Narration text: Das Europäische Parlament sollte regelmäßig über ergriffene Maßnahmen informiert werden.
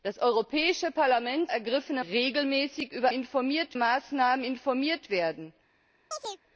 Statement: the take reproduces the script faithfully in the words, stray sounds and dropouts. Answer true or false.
false